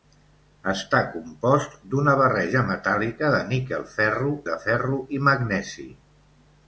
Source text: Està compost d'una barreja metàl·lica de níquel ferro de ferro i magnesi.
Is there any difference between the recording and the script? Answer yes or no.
no